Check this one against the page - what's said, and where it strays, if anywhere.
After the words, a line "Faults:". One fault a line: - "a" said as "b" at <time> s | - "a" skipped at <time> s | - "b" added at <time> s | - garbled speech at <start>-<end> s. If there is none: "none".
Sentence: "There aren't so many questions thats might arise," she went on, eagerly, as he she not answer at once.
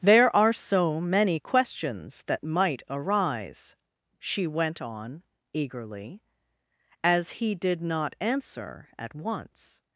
"There are so many questions that might arise," she went on, eagerly, as he did not answer at once.
Faults:
- "aren't" said as "are" at 0.3 s
- "thats" said as "that" at 2.2 s
- "she" said as "did" at 7.5 s